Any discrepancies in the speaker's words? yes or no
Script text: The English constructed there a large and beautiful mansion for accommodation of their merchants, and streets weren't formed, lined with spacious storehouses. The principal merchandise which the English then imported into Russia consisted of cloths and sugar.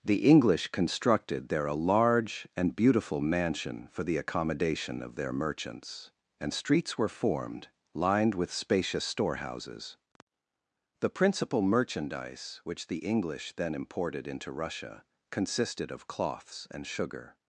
yes